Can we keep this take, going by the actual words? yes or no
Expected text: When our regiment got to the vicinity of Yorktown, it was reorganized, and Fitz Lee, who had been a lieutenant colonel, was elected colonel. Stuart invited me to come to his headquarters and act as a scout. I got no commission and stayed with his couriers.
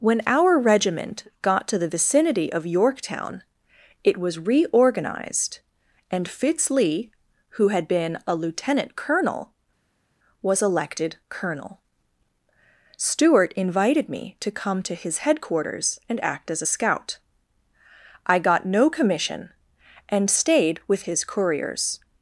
yes